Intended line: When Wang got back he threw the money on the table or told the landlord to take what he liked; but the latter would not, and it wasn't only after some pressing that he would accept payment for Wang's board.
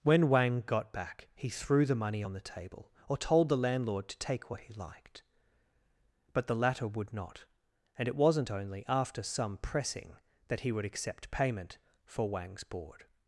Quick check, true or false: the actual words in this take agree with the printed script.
true